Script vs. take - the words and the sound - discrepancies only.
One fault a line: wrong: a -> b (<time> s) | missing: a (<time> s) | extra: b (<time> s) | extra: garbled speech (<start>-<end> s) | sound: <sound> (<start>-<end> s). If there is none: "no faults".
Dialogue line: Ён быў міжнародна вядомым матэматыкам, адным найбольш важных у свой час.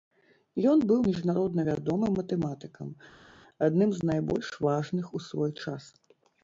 extra: з (4.0 s)